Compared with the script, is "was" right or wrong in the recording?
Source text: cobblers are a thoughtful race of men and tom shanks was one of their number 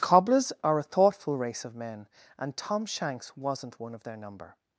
wrong